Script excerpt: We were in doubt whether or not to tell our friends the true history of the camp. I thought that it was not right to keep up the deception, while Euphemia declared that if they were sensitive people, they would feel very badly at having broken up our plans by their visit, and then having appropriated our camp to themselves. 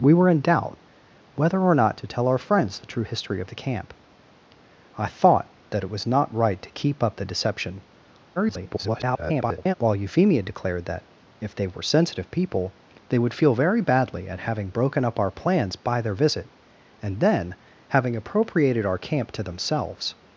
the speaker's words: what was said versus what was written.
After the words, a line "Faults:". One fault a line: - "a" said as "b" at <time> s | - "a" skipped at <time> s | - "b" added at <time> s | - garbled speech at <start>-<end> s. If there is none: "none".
We were in doubt whether or not to tell our friends the true history of the camp. I thought that it was not right to keep up the deception, [garbled] while Euphemia declared that if they were sensitive people, they would feel very badly at having broken up our plans by their visit, and then having appropriated our camp to themselves.
Faults:
- garbled speech at 8.4-9.7 s